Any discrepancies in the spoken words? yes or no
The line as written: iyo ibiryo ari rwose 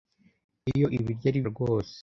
no